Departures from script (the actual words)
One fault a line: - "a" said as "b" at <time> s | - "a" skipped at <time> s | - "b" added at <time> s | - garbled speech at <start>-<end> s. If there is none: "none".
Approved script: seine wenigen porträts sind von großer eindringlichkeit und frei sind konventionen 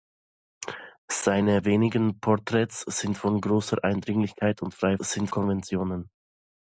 none